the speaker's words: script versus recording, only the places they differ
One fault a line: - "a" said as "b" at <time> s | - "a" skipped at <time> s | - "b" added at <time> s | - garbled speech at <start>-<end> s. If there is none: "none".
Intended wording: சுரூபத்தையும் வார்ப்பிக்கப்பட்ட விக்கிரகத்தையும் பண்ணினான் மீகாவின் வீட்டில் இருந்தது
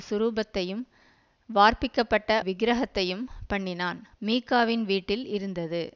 none